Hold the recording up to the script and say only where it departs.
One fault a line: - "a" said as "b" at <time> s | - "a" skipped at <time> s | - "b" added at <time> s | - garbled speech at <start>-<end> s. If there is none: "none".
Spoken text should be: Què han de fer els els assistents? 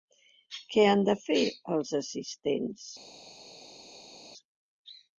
- "els" skipped at 1.9 s